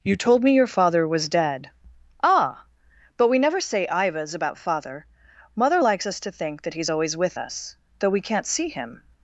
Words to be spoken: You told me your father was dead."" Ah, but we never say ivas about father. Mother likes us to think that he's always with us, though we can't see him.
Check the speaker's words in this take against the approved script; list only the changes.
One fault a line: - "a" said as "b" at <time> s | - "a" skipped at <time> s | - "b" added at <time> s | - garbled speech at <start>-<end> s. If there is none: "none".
none